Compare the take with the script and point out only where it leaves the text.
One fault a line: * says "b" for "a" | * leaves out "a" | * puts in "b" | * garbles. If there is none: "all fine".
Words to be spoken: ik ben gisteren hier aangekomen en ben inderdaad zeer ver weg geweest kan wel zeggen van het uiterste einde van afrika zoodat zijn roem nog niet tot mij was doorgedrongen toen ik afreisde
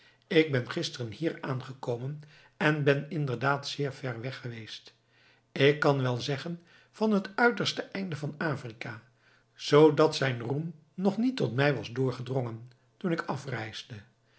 * puts in "ik"